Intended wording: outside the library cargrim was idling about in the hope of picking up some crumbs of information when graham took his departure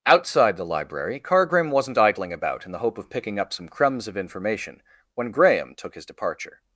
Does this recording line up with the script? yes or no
no